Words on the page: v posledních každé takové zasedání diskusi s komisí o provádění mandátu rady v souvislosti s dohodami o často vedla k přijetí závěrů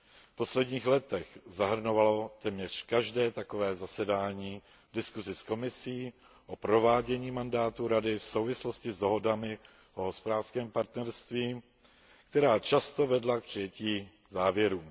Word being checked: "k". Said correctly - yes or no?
yes